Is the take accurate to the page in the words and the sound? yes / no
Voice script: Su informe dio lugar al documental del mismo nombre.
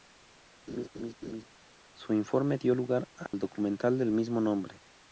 no